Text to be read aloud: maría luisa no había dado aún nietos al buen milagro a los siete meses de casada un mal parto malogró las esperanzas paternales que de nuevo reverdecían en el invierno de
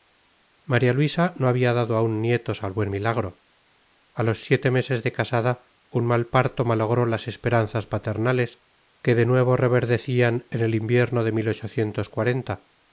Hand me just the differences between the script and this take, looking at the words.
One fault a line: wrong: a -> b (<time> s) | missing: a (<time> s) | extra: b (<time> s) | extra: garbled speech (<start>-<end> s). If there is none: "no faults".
no faults